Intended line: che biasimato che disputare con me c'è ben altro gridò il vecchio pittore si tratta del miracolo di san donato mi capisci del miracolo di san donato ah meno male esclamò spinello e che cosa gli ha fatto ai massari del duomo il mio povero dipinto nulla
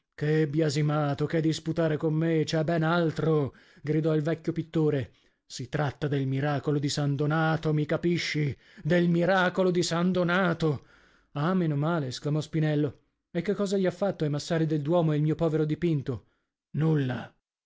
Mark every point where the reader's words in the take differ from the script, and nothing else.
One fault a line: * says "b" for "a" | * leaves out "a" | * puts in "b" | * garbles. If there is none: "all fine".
all fine